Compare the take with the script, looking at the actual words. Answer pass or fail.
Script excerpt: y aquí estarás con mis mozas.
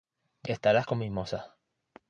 fail